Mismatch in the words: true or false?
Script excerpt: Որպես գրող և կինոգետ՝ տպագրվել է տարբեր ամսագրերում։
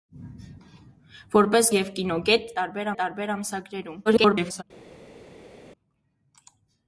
true